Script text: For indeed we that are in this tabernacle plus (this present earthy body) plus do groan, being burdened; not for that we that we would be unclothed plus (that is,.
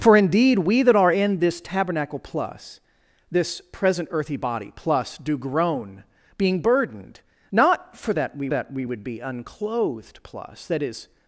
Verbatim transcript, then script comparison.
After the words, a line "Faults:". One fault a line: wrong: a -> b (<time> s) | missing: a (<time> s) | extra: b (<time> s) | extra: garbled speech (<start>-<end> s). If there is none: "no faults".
For indeed we that are in this tabernacle plus (this present earthy body) plus do groan, being burdened; not for that we that we would be unclothed plus (that is,.
Faults:
no faults